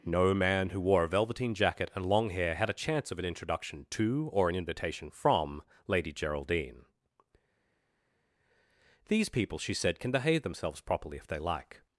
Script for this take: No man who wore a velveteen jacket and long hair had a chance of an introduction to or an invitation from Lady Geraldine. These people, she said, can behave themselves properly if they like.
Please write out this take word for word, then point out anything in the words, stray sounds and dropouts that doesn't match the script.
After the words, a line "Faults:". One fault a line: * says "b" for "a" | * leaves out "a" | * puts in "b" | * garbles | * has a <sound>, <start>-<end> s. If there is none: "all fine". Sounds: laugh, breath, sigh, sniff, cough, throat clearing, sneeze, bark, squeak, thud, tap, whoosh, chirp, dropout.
No man who wore a velveteen jacket and long hair had a chance of an introduction to or an invitation from Lady Geraldine. These people, she said, can behave themselves properly if they like.
Faults:
all fine